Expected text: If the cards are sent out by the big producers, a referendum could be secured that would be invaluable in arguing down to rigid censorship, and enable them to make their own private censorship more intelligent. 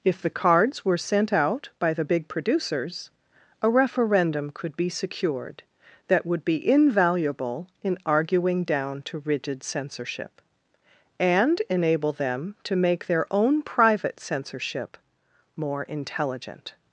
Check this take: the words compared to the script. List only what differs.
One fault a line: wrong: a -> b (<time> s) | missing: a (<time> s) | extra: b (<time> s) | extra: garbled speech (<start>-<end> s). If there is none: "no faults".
wrong: are -> were (0.8 s)